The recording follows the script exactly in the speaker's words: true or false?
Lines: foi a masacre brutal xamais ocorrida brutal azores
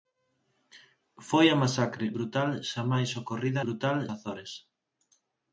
true